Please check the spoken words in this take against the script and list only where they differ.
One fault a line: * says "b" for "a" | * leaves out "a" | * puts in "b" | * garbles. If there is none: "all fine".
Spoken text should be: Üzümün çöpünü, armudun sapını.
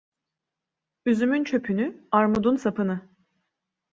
all fine